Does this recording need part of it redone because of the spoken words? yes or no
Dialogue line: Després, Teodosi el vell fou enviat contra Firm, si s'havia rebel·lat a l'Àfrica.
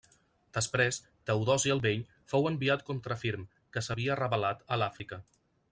yes